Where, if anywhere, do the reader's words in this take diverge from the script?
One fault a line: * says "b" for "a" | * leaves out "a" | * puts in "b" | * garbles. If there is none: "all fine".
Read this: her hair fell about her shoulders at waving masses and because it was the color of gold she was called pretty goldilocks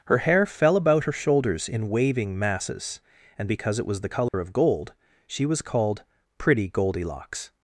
* says "in" for "at"